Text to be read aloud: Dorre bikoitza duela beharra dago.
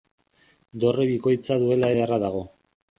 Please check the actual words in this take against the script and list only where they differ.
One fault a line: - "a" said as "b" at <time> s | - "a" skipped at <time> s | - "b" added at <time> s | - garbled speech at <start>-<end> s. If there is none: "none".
none